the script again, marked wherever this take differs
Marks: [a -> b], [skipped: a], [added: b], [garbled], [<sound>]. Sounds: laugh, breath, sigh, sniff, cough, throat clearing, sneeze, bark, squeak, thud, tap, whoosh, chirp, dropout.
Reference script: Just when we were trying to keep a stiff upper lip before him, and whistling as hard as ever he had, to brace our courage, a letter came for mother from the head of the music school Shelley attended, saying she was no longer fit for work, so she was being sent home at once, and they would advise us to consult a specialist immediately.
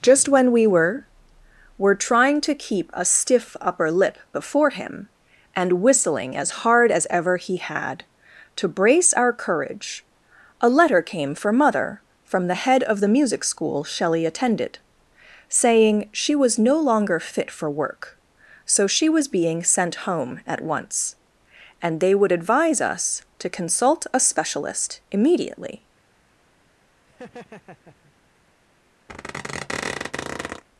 Just when we were [added: were] trying to keep a stiff upper lip before him, and whistling as hard as ever he had, to brace our courage, a letter came for mother from the head of the music school Shelley attended, saying she was no longer fit for work, so she was being sent home at once, and they would advise us to consult a specialist immediately. [laugh] [squeak]